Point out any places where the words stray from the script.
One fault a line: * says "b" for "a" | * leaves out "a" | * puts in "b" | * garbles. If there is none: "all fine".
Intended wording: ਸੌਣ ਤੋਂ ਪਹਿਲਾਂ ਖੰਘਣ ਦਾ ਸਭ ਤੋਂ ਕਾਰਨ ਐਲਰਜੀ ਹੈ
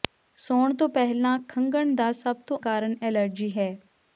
all fine